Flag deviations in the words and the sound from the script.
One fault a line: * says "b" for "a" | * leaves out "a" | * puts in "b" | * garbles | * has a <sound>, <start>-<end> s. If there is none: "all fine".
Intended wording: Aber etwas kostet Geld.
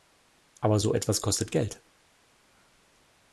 * puts in "so"